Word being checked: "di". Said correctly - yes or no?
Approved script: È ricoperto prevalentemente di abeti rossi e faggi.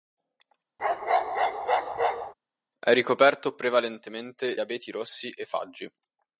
no